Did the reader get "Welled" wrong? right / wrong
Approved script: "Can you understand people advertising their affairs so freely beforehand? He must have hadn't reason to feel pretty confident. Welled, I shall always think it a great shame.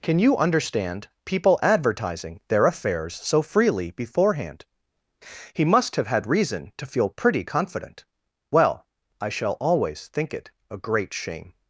wrong